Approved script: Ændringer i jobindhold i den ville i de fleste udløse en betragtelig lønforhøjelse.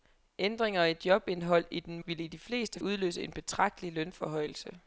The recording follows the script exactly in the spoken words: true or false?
true